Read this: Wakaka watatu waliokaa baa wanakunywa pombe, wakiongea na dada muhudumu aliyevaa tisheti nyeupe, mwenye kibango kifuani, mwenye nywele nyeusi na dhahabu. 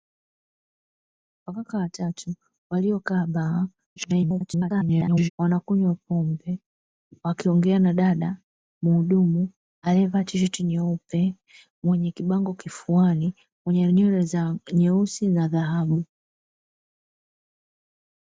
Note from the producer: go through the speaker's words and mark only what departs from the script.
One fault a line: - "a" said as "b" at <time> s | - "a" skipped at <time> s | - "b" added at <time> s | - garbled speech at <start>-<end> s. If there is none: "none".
- garbled speech at 4.0-5.3 s